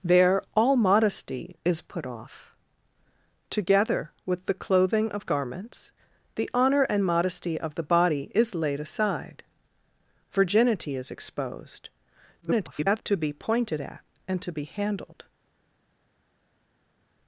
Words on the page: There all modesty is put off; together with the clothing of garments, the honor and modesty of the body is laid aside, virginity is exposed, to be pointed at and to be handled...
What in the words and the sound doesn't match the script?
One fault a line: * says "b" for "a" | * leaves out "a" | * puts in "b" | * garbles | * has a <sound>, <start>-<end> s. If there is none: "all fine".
* garbles